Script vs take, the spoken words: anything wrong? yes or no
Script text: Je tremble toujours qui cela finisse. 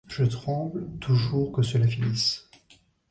yes